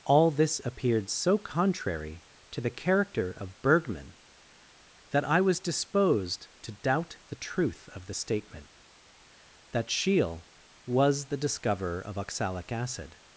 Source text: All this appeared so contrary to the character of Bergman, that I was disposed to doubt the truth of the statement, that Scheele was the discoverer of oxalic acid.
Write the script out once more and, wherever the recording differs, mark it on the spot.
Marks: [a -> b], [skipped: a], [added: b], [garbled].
All this appeared so contrary to the character of Bergman, that I was disposed to doubt the truth of the statement, that Scheele was the discoverer of oxalic acid.